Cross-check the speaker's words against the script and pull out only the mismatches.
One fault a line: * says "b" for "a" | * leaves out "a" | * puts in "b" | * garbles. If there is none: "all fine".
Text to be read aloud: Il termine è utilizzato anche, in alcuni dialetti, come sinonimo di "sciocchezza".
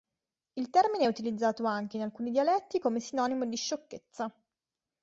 all fine